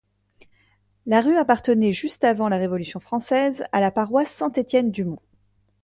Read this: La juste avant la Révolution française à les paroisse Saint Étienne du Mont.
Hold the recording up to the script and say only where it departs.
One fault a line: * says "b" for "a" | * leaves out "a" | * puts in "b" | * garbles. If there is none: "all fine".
* puts in "rue appartenait"
* says "la" for "les"